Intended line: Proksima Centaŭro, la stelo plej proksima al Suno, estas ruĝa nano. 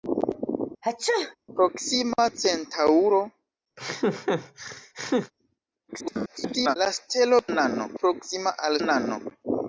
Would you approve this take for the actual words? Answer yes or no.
no